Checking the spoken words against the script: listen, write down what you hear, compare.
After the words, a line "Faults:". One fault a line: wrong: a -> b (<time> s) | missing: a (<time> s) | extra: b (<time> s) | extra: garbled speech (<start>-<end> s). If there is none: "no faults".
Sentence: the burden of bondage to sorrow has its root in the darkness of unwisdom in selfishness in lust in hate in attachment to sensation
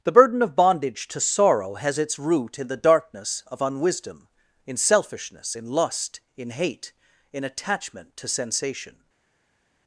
the burden of bondage to sorrow has its root in the darkness of unwisdom in selfishness in lust in hate in attachment to sensation
Faults:
no faults